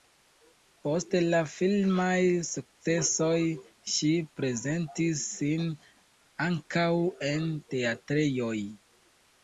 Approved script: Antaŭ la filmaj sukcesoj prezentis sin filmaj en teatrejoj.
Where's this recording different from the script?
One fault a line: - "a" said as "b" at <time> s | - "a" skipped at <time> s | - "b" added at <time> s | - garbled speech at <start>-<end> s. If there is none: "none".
- "Antaŭ" said as "Post" at 0.8 s
- "ŝi" added at 4.0 s
- "filmaj" said as "ankaŭ" at 6.5 s